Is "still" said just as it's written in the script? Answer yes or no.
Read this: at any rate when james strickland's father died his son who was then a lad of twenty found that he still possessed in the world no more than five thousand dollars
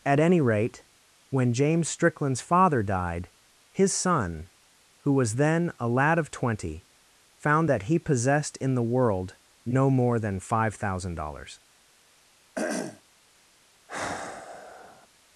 no